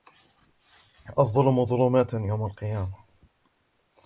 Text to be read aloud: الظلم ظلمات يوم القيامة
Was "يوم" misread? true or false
false